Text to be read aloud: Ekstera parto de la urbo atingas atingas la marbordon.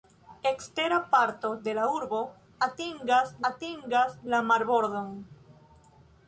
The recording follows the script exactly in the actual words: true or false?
true